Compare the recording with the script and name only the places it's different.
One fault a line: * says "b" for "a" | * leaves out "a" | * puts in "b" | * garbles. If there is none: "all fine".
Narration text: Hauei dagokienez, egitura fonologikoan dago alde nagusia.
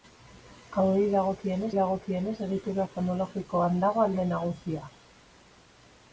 * puts in "dagokienez"